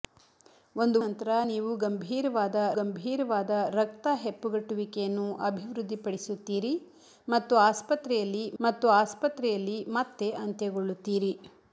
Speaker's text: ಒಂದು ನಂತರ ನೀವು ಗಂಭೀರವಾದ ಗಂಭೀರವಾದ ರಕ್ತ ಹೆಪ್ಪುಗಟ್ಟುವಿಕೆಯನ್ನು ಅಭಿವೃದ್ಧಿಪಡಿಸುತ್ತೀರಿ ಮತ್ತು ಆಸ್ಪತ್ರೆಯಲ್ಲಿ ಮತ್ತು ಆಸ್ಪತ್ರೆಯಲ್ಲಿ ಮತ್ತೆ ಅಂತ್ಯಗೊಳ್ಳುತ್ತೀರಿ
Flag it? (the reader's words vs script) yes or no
no